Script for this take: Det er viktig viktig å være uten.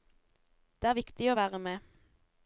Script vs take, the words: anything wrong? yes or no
yes